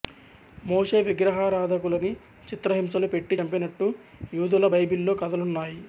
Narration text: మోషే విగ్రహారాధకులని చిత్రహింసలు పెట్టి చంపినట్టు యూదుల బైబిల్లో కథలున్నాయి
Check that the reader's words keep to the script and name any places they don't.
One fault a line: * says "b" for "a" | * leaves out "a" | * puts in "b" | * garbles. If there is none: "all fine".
all fine